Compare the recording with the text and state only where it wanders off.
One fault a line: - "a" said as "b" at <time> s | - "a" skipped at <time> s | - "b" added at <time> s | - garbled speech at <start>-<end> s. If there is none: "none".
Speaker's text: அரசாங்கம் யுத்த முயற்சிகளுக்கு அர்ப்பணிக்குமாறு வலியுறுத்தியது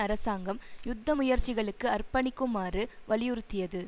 none